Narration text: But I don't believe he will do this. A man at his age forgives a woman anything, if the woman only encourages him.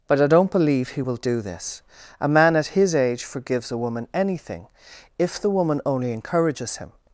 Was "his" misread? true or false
false